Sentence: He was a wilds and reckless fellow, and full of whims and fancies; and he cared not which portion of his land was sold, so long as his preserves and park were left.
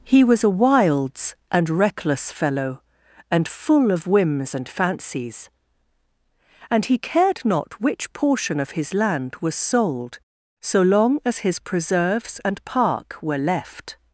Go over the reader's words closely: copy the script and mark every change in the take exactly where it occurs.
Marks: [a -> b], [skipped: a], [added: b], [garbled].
He was a wilds and reckless fellow, and full of whims and fancies; and he cared not which portion of his land was sold, so long as his preserves and park were left.